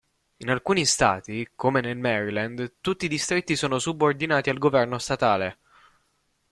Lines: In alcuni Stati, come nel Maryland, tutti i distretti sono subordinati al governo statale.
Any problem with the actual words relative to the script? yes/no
no